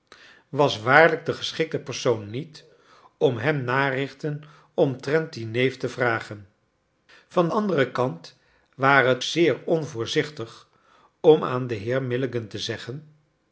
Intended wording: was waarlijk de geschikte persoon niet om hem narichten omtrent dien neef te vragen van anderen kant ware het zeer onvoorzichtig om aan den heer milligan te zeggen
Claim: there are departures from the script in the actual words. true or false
false